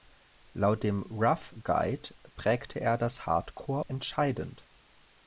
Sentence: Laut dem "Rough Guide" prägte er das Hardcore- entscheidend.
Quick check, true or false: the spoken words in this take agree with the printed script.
true